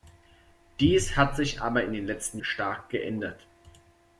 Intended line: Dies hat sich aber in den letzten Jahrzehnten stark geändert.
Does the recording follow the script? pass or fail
fail